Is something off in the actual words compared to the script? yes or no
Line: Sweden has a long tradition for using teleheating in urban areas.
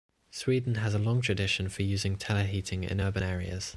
no